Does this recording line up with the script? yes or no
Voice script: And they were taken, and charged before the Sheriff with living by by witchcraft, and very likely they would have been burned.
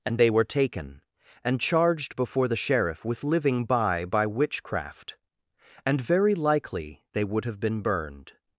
yes